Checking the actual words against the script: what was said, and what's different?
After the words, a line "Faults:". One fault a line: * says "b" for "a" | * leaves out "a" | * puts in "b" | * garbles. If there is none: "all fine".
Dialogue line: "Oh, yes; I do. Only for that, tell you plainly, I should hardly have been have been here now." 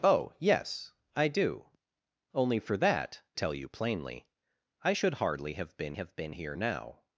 "Oh, yes; I do. Only for that, tell you plainly, I should hardly have been have been here now."
Faults:
all fine